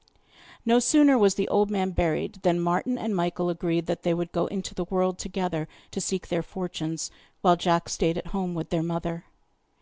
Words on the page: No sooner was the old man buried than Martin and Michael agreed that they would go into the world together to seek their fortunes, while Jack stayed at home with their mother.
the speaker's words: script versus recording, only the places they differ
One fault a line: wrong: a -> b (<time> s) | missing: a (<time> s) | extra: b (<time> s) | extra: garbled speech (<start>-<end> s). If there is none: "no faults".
no faults